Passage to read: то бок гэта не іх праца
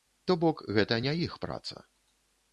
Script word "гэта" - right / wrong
right